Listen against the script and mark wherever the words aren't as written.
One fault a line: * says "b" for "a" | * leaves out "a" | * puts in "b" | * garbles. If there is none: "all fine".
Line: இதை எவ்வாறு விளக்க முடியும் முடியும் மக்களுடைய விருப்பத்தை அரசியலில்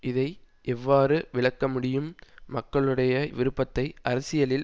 * leaves out "முடியும்"